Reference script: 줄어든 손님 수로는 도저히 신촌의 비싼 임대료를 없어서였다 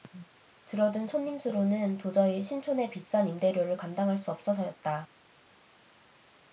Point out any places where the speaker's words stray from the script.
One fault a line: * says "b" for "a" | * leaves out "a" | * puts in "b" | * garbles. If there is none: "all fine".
* puts in "감당할 수"